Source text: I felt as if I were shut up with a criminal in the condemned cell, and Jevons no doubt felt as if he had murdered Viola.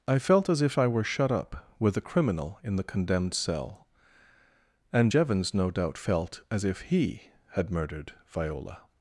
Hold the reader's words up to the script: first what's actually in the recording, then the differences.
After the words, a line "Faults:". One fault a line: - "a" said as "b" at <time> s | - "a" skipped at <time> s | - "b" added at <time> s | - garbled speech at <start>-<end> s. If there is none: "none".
I felt as if I were shut up with a criminal in the condemned cell, and Jevons no doubt felt as if he had murdered Viola.
Faults:
none